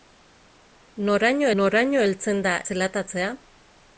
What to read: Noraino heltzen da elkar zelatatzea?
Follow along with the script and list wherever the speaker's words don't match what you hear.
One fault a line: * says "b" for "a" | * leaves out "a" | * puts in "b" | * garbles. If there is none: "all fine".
* puts in "noraino"
* leaves out "elkar"